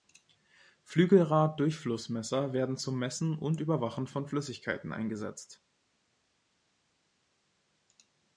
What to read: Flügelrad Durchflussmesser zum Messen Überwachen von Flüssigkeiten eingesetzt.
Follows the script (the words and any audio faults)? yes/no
no